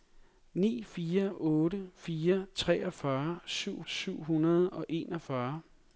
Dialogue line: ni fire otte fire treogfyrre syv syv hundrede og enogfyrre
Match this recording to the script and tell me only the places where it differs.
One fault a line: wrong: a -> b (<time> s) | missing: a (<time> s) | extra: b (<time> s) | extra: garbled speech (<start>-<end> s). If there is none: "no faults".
no faults